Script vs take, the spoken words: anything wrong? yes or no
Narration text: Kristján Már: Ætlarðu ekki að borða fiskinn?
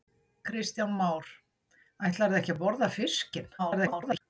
yes